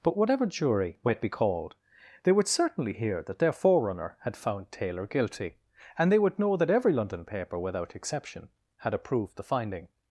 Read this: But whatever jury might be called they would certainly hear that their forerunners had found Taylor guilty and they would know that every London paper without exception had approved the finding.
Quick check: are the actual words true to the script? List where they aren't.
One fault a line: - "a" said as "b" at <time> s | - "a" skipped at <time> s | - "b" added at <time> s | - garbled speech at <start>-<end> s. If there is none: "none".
- "forerunners" said as "forerunner" at 3.5 s